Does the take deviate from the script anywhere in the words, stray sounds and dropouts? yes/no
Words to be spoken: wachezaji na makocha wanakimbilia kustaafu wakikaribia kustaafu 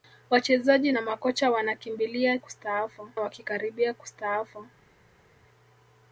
no